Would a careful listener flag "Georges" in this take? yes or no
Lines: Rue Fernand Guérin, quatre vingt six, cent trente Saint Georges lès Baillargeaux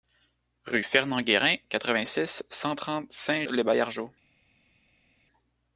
yes